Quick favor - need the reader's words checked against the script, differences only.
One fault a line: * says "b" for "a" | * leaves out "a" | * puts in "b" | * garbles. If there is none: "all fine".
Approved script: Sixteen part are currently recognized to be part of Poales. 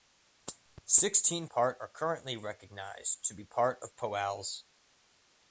all fine